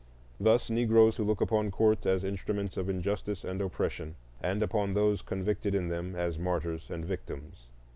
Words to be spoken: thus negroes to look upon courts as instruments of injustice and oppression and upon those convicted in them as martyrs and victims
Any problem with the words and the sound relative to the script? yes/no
no